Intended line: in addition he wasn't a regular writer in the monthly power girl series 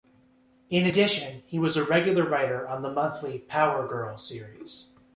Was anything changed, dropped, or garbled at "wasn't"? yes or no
yes